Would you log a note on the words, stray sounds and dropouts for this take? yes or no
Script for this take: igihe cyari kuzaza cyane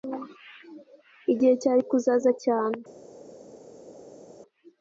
no